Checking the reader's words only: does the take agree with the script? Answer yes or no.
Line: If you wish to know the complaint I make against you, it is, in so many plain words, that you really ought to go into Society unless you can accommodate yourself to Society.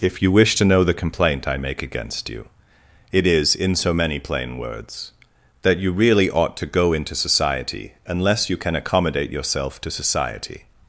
yes